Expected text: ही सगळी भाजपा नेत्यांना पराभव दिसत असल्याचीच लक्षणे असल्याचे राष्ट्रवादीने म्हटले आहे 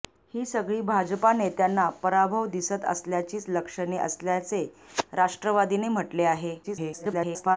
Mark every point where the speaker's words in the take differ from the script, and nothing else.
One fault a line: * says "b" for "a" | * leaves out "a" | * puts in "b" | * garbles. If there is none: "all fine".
* garbles